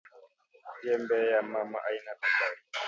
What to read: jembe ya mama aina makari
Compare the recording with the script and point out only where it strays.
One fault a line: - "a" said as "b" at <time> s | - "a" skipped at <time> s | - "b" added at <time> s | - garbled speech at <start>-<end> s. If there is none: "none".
none